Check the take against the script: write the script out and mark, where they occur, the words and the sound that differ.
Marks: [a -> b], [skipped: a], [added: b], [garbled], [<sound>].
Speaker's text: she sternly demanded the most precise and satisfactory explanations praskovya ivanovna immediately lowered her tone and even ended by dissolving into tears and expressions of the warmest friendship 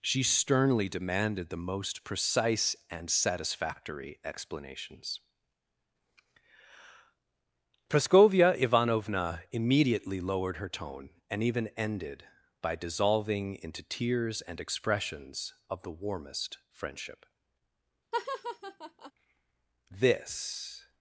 she sternly demanded the most precise and satisfactory explanations praskovya ivanovna immediately lowered her tone and even ended by dissolving into tears and expressions of the warmest friendship [laugh] [added: this]